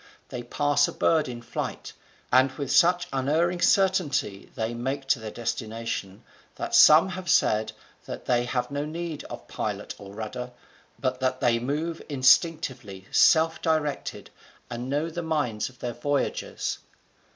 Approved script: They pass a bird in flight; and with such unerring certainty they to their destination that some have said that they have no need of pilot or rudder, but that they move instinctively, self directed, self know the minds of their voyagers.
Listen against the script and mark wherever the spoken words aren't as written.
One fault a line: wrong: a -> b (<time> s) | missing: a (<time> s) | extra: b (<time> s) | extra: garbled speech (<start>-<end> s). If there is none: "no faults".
extra: make (4.7 s)
wrong: self -> and (14.7 s)